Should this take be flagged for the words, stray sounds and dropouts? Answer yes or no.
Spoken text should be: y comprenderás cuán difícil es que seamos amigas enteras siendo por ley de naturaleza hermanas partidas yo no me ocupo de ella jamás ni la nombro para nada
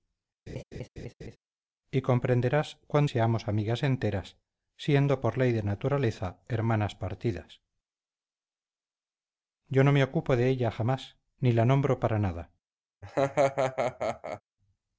yes